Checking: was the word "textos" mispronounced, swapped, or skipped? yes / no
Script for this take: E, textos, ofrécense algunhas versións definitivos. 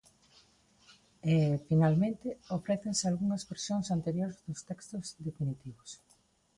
yes